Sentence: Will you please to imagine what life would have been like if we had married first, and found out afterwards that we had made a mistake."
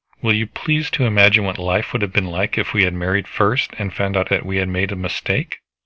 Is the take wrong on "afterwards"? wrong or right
wrong